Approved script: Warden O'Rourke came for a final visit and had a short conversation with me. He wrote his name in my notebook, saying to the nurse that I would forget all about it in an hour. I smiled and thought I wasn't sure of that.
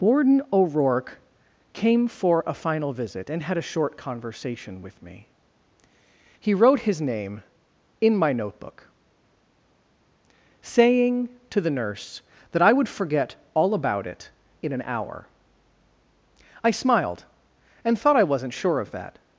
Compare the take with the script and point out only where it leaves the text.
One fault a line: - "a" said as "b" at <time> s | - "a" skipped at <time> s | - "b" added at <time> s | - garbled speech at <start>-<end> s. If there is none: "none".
none